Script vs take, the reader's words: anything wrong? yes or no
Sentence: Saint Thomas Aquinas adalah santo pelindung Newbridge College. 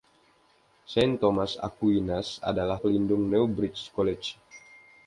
yes